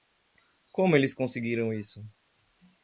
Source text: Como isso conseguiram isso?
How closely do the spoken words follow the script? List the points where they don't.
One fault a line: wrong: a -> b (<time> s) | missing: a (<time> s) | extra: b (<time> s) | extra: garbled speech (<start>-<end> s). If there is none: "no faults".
wrong: isso -> eles (0.9 s)